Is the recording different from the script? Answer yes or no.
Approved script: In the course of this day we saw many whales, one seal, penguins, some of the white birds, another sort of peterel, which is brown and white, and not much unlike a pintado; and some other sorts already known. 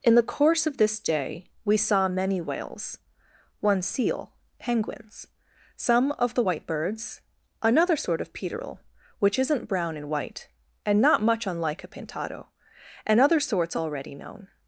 yes